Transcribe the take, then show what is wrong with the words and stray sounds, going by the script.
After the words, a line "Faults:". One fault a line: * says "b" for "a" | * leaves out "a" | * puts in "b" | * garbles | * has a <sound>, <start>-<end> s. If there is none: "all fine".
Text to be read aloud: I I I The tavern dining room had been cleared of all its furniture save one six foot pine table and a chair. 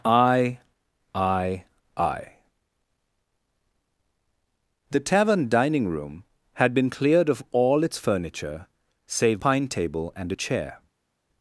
I I I The tavern dining room had been cleared of all its furniture save pine table and a chair.
Faults:
* leaves out "one six foot"